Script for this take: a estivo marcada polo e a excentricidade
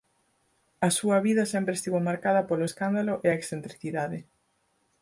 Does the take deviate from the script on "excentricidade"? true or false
false